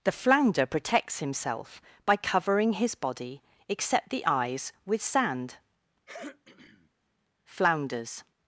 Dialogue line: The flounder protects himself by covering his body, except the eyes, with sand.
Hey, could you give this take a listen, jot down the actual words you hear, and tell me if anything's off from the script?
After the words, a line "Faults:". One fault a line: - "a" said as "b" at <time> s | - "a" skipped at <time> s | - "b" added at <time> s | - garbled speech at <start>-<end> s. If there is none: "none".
The flounder protects himself by covering his body, except the eyes, with sand. Flounders
Faults:
- "Flounders" added at 7.4 s